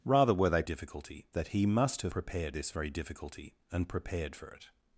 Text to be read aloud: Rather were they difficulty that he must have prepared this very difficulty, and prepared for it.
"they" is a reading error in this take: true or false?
false